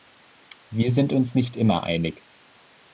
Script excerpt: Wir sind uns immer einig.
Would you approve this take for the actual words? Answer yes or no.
no